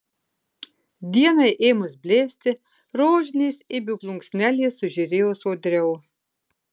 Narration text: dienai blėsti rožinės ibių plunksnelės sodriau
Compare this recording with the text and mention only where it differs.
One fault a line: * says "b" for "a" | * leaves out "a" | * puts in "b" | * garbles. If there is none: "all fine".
* puts in "ėmus"
* puts in "sužėrėjo"